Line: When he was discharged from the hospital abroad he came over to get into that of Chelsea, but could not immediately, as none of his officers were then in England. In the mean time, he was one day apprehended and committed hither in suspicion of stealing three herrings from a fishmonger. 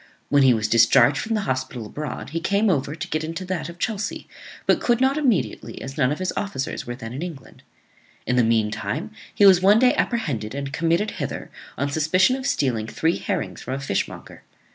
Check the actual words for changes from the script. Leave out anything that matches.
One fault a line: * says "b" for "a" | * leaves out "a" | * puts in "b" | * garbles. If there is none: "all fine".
* says "on" for "in"